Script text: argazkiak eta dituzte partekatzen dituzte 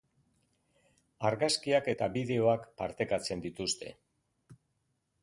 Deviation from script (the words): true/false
true